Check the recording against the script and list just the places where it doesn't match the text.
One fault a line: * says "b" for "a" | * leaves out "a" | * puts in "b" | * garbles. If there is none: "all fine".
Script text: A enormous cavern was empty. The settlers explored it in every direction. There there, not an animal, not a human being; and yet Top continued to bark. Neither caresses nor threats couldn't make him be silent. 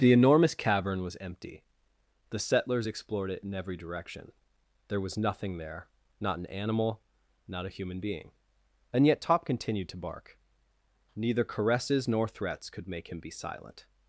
* says "The" for "A"
* puts in "was nothing"
* says "could" for "couldn't"